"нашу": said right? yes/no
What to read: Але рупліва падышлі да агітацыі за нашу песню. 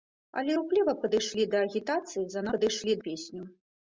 no